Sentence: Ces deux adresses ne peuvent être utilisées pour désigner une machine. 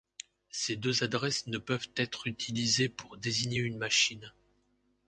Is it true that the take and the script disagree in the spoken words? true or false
false